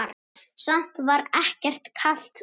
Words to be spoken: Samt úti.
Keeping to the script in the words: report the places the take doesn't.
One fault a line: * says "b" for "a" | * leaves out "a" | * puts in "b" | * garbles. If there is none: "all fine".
* puts in "var ekkert kalt"